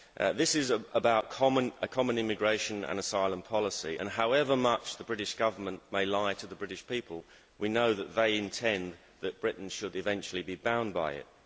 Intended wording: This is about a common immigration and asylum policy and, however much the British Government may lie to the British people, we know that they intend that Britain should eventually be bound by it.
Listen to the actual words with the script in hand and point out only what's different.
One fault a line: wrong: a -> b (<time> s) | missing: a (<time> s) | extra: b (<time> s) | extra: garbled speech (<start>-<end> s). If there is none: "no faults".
no faults